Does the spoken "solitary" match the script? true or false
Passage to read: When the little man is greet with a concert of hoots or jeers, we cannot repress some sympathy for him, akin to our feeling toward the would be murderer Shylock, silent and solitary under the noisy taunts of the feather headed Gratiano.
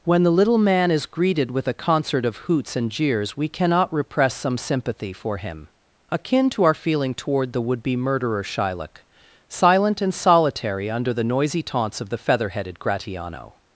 true